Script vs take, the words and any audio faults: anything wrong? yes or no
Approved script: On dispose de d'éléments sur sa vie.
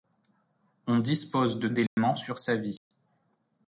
yes